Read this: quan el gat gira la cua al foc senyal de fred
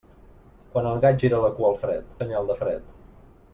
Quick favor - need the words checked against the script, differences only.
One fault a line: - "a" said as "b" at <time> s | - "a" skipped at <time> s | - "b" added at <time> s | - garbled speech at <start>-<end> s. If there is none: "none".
- "foc" said as "fred" at 1.8 s